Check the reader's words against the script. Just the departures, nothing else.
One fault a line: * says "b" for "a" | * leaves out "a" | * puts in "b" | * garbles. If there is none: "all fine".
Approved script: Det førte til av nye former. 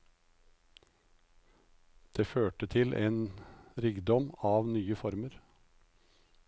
* puts in "en rikdom"